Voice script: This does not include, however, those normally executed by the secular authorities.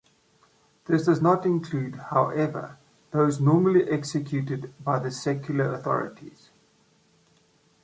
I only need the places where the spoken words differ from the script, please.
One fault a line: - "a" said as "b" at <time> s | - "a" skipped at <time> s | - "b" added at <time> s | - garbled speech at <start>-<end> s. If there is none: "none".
none